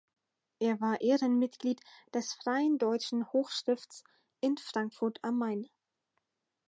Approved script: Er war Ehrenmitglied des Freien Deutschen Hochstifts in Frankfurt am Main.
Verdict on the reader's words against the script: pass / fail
pass